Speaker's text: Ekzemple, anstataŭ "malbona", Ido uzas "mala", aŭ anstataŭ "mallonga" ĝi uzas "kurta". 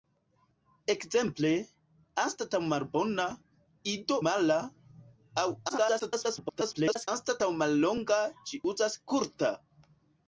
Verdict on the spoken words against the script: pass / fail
fail